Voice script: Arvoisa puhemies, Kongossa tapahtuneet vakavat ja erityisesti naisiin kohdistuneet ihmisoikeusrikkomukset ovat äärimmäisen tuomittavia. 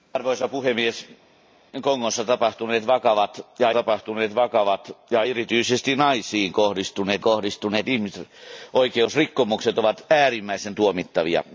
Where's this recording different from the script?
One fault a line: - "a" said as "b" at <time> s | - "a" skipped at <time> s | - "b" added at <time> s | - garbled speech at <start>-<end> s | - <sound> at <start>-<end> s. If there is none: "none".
- "tapahtuneet vakavat ja" added at 3.7 s
- "kohdistuneet" added at 7.2 s